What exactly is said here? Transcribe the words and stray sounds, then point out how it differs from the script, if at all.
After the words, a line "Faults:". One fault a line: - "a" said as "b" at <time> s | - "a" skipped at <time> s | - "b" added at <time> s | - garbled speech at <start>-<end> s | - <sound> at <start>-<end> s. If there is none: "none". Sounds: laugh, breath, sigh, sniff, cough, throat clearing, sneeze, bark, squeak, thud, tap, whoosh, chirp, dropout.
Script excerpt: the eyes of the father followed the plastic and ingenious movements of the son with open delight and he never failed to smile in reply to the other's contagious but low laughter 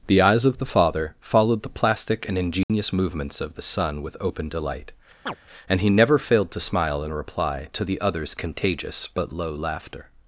the eyes of the father followed the plastic and ingenious movements of the son with open delight and he never failed to smile in reply to the other's contagious but low laughter
Faults:
- dropout at 2.6-2.7 s
- chirp at 5.3-5.4 s